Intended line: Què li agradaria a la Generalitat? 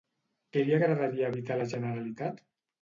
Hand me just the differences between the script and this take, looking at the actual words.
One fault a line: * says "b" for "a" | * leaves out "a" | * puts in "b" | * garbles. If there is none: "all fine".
* puts in "evitar"